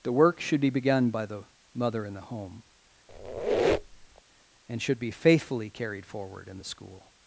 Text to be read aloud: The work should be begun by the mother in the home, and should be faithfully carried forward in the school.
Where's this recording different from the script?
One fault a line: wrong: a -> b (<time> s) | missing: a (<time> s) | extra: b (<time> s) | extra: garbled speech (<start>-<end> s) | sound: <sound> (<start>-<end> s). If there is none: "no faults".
sound: squeak (3.1-4.2 s)